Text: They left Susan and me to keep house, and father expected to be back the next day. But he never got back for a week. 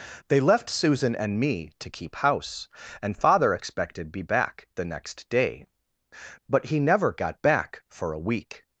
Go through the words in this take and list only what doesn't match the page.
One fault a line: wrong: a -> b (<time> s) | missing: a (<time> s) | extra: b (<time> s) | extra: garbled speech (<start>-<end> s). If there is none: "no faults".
missing: to (4.1 s)